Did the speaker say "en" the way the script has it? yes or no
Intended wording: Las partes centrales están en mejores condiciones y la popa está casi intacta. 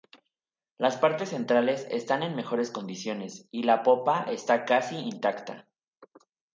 yes